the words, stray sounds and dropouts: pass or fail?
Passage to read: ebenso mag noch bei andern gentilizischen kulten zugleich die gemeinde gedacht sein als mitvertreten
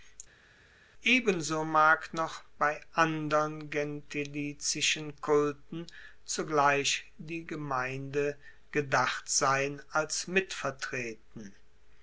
pass